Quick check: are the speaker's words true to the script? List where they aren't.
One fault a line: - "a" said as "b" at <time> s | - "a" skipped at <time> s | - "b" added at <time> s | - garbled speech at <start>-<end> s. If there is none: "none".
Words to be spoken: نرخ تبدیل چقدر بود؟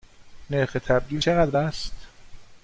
- "بود" said as "است" at 1.6 s